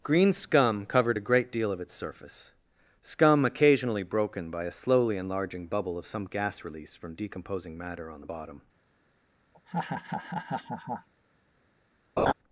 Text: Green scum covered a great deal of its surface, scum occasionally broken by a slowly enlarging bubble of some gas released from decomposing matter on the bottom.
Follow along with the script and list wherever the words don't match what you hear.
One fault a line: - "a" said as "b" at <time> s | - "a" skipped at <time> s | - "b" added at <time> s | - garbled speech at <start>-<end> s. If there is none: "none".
- "released" said as "release" at 6.6 s